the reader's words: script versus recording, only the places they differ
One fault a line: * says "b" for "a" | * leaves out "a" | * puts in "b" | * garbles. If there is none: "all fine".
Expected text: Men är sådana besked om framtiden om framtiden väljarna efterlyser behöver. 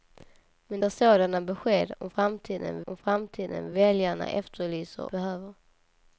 all fine